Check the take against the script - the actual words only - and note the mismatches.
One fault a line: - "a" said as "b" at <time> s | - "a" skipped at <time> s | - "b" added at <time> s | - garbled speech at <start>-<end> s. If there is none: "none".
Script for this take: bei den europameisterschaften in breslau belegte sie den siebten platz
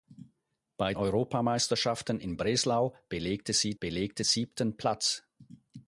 - "den" skipped at 0.9 s
- "den" said as "belegte" at 3.8 s